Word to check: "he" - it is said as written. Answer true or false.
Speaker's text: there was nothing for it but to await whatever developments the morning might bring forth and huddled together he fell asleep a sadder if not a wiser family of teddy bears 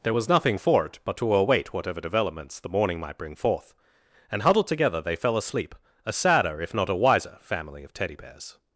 false